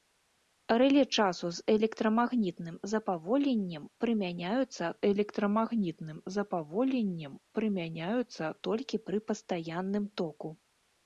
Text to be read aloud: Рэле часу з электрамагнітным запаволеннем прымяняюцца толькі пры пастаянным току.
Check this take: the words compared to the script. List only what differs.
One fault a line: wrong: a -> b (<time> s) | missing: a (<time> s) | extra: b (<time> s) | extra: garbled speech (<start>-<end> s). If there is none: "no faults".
extra: электрамагнітным запаволеннем прымяняюцца (5.1 s)